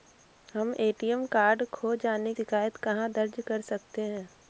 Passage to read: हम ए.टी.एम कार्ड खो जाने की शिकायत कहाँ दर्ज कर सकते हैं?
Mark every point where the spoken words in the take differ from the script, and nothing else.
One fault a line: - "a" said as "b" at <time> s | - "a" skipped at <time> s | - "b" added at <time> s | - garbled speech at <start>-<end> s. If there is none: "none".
- "की" skipped at 2.3 s